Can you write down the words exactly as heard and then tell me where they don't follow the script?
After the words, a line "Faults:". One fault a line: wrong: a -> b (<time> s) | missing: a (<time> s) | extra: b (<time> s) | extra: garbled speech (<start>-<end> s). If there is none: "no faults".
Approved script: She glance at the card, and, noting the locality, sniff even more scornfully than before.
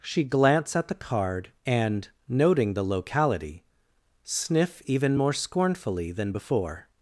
She glance at the card, and, noting the locality, sniff even more scornfully than before.
Faults:
no faults